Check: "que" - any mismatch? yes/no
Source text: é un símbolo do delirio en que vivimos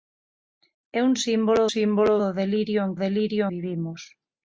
yes